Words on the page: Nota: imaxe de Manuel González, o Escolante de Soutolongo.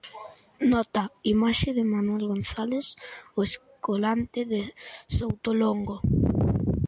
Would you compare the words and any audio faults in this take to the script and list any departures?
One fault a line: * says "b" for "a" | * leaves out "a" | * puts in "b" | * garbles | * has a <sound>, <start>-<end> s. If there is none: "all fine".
all fine